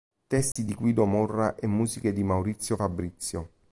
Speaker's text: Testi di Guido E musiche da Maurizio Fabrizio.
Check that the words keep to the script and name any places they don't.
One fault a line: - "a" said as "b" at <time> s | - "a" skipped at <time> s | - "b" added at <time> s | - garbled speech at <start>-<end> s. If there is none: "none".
- "Morra" added at 1.0 s
- "da" said as "di" at 2.1 s